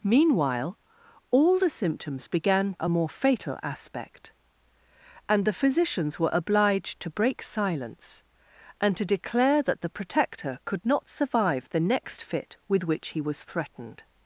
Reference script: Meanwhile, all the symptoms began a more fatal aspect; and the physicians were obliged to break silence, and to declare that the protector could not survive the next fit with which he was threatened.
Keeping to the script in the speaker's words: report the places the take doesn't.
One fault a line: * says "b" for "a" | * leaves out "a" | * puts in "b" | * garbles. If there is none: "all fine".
all fine